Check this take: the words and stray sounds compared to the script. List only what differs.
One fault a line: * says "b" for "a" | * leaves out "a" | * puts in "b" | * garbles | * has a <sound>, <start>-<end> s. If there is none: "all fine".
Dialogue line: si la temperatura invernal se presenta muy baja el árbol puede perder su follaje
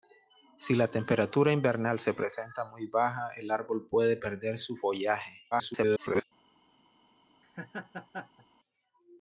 * garbles
* has a laugh, 7.4-8.5 s